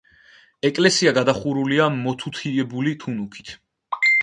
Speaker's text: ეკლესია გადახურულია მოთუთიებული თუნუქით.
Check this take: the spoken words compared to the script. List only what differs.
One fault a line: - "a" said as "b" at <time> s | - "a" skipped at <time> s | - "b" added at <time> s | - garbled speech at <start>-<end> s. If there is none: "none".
none